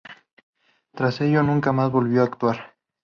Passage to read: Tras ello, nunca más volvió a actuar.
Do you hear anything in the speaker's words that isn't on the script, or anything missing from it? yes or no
no